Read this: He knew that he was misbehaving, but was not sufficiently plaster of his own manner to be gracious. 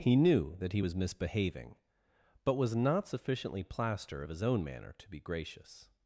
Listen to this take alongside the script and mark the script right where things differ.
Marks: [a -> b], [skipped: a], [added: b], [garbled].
He knew that he was misbehaving, but was not sufficiently plaster of his own manner to be gracious.